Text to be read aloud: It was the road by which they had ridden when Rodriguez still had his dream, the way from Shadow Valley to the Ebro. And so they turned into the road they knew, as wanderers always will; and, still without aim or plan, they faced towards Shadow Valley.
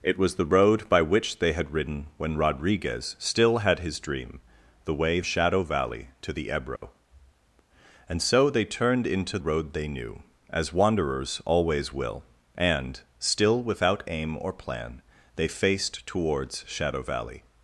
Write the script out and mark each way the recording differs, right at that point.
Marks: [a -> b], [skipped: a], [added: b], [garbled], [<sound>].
It was the road by which they had ridden when Rodriguez still had his dream, the way [skipped: from] Shadow Valley to the Ebro. [dropout] And so they turned into [skipped: the] road they knew, as wanderers always will; and, still without aim or plan, they faced towards Shadow Valley.